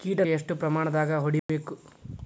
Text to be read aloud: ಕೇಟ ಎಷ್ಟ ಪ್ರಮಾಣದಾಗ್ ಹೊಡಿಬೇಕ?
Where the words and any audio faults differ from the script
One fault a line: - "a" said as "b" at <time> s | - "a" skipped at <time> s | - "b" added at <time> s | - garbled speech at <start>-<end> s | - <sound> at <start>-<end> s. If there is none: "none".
- dropout at 1.4-1.5 s